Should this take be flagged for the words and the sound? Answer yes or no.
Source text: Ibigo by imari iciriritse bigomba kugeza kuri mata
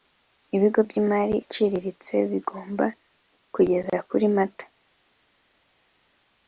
no